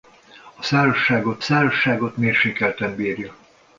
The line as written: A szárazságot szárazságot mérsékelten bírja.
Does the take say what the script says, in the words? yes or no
yes